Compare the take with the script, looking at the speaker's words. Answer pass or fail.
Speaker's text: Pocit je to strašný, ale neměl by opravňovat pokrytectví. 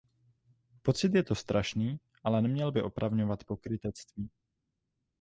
pass